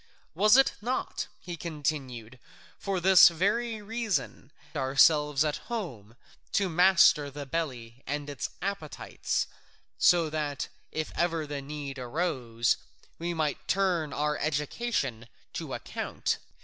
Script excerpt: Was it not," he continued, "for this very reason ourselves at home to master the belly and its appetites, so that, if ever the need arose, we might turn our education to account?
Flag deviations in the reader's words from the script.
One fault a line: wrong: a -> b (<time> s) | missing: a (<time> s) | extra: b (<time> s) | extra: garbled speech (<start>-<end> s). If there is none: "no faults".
no faults